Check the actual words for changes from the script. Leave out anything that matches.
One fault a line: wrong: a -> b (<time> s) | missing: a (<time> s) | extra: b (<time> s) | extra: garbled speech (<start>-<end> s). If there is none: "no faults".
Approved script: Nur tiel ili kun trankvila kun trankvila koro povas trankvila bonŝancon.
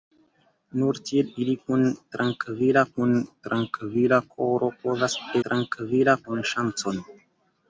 no faults